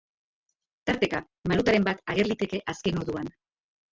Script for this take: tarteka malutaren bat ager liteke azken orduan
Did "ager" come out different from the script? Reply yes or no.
no